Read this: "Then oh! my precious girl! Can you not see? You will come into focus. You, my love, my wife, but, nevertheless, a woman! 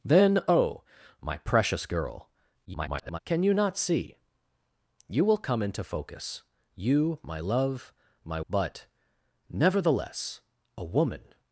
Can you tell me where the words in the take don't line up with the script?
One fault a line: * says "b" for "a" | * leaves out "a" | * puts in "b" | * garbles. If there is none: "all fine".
* garbles
* leaves out "wife"